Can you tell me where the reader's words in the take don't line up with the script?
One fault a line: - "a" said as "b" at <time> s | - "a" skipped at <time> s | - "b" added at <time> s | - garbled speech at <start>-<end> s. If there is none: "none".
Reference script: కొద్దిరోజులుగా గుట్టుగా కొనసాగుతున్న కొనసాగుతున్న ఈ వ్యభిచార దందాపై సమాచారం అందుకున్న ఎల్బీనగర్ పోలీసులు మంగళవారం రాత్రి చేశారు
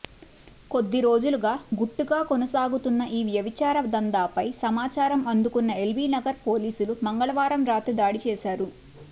- "కొనసాగుతున్న" skipped at 3.0 s
- "దాడి" added at 8.0 s